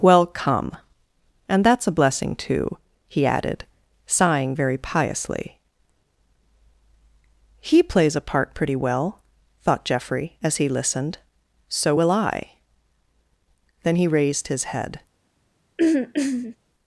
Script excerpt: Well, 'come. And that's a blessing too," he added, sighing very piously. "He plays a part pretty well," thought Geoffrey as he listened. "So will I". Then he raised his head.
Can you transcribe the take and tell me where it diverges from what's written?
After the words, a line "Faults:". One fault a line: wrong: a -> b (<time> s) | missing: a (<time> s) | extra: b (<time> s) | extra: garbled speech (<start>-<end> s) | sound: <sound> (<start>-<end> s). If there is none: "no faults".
Well, 'come. And that's a blessing too," he added, sighing very piously. "He plays a part pretty well," thought Geoffrey as he listened. "So will I". Then he raised his head.
Faults:
sound: throat clearing (15.8-16.6 s)